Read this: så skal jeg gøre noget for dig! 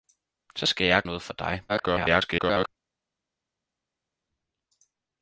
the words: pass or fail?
fail